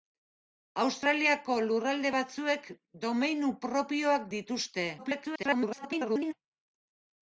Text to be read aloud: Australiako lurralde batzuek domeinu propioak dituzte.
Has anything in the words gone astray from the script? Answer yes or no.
yes